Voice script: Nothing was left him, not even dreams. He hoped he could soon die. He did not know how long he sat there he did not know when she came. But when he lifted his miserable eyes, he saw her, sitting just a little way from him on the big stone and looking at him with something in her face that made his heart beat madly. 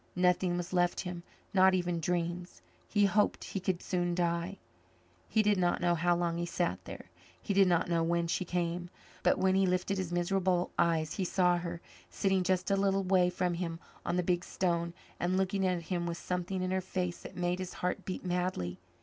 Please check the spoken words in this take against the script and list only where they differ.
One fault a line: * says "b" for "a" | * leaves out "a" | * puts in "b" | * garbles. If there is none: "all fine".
all fine